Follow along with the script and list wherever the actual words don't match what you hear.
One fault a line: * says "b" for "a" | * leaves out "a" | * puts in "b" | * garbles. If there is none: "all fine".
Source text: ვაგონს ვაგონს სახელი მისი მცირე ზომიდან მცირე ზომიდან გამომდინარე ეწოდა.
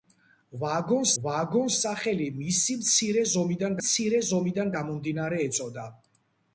all fine